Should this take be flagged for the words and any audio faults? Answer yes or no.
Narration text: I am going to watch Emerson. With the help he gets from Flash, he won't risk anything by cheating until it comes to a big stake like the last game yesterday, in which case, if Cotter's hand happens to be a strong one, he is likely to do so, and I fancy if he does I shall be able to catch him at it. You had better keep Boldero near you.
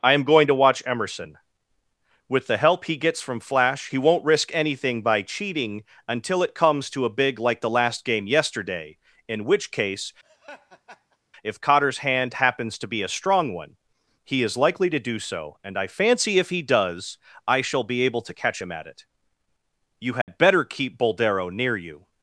yes